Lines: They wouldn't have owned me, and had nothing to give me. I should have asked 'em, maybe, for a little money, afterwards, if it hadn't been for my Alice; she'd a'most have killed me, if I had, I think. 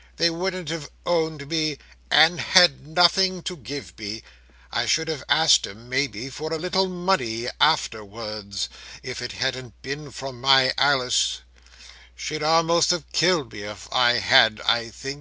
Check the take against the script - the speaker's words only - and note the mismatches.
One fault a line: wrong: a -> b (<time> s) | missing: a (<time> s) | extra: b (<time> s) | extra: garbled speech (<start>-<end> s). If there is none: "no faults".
no faults